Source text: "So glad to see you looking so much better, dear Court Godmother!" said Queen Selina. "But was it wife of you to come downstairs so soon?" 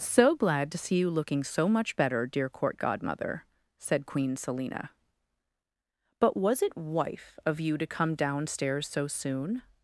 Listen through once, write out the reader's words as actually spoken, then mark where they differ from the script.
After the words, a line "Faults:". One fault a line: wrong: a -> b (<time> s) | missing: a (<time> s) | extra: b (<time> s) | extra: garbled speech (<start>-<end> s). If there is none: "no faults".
"So glad to see you looking so much better, dear Court Godmother!" said Queen Selina. "But was it wife of you to come downstairs so soon?"
Faults:
no faults